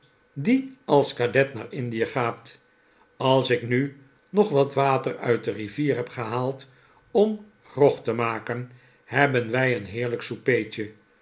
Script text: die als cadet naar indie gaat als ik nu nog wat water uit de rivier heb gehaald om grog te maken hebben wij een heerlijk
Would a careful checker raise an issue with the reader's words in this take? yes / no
no